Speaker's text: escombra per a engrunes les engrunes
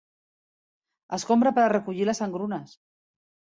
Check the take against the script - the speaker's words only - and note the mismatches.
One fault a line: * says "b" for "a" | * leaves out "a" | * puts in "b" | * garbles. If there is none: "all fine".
* says "recollir" for "engrunes"